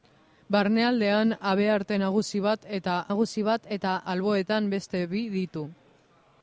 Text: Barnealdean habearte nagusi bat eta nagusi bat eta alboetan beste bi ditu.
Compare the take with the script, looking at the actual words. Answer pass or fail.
pass